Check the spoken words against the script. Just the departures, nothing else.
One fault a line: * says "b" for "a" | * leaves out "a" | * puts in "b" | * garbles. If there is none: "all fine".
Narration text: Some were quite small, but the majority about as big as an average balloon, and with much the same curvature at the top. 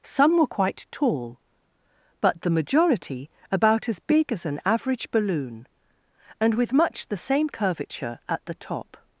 * says "tall" for "small"